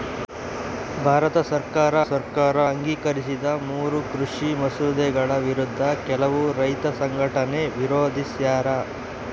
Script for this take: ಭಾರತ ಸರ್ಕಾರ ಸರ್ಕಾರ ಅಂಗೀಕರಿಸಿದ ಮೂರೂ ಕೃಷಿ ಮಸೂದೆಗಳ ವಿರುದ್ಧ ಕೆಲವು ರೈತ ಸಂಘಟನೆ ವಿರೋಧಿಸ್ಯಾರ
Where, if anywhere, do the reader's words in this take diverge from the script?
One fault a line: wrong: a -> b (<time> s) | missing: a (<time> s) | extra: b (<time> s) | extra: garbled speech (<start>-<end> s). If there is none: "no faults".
no faults